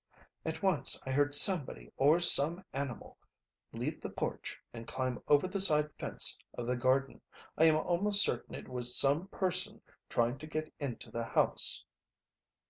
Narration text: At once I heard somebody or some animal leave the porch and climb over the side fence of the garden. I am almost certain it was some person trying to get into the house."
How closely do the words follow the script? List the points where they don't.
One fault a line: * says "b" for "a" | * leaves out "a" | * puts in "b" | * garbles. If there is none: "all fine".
all fine